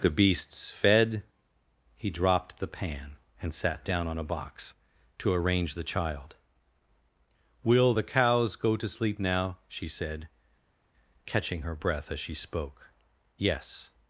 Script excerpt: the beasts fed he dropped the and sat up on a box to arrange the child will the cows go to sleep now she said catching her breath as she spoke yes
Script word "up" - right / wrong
wrong